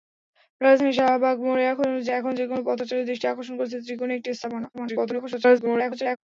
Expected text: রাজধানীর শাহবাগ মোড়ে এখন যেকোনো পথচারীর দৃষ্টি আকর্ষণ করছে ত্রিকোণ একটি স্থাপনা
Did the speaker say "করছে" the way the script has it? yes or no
yes